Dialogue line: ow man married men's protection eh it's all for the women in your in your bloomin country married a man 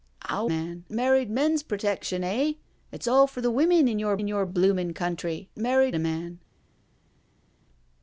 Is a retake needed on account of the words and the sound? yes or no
no